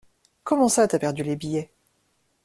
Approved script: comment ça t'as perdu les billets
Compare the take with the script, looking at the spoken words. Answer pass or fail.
pass